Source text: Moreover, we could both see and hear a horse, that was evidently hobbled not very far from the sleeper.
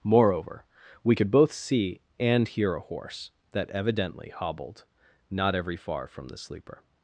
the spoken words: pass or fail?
fail